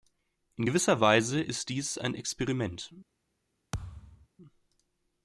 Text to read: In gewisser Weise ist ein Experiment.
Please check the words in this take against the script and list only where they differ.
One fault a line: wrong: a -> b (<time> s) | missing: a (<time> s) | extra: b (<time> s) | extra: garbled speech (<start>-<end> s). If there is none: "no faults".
extra: dies (1.7 s)